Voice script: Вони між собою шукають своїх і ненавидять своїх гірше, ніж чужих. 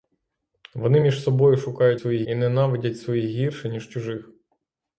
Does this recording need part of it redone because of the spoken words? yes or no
no